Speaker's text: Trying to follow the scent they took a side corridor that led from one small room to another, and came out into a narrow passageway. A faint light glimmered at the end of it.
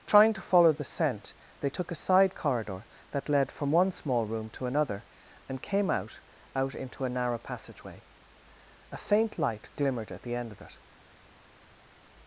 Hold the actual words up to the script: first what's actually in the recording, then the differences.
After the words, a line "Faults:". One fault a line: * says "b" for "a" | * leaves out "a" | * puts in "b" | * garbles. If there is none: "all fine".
Trying to follow the scent they took a side corridor that led from one small room to another, and came out out into a narrow passageway. A faint light glimmered at the end of it.
Faults:
* puts in "out"